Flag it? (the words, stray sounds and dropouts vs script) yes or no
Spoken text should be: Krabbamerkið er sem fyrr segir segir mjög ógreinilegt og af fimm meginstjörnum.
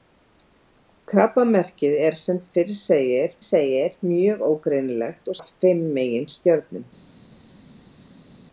no